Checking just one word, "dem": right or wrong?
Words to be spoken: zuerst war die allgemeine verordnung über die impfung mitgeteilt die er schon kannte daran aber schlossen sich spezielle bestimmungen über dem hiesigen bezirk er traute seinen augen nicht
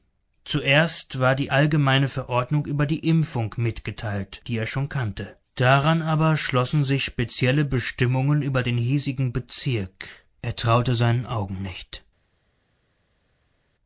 wrong